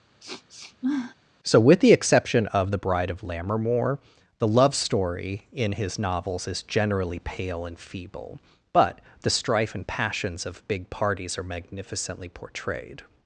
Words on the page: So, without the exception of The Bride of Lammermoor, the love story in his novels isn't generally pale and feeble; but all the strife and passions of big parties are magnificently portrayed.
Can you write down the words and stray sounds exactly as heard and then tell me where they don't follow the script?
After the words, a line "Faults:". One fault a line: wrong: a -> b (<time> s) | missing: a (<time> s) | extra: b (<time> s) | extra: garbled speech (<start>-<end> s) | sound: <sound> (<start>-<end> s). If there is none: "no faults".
So, with the exception of The Bride of Lammermoor, the love story in his novels is generally pale and feeble; but the strife and passions of big parties are magnificently portrayed.
Faults:
sound: sniff (0.2-1.2 s)
wrong: without -> with (1.6 s)
wrong: isn't -> is (6.5 s)
missing: all (9.0 s)